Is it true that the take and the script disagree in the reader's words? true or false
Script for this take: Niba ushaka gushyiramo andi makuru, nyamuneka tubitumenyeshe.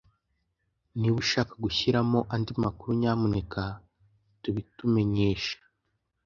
false